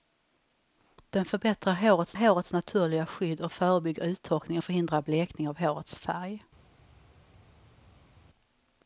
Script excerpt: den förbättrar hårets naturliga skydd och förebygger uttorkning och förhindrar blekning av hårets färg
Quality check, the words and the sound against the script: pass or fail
fail